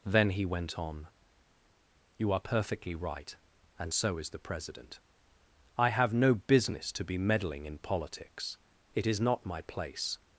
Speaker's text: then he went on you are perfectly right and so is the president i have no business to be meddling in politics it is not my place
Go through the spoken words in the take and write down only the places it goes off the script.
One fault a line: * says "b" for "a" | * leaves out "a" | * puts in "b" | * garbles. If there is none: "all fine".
all fine